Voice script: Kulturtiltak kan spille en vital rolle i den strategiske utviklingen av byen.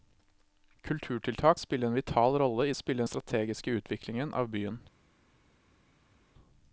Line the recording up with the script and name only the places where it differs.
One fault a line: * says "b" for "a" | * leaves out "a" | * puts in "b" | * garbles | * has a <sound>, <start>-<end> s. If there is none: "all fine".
* leaves out "kan"
* says "spille" for "den"